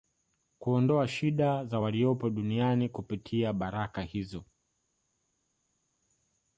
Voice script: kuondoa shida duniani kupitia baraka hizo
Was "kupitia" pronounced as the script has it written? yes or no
yes